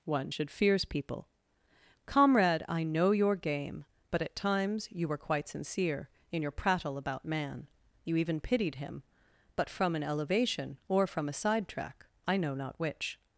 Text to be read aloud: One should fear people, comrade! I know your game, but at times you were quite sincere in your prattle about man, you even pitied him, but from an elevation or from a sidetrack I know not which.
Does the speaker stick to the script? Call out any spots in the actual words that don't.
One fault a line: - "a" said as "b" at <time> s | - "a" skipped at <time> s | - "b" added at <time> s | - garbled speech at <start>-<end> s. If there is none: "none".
- "fear" said as "fears" at 0.5 s